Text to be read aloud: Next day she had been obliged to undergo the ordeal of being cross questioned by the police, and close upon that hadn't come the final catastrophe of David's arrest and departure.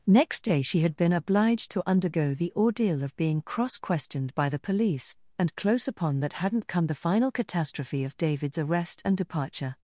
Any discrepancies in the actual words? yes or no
no